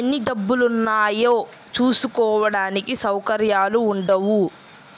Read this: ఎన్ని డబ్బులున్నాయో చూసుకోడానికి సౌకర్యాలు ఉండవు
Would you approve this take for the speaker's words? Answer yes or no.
yes